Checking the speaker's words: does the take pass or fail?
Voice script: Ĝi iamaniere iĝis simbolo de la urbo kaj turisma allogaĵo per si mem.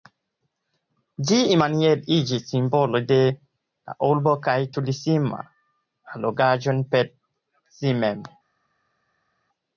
pass